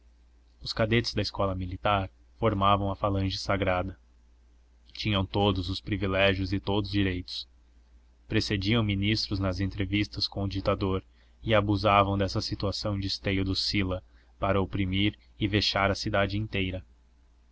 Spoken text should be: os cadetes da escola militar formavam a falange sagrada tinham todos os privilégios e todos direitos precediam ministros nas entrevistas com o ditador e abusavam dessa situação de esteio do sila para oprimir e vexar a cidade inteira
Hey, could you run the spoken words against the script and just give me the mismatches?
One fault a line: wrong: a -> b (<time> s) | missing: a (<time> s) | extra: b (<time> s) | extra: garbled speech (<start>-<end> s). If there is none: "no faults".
no faults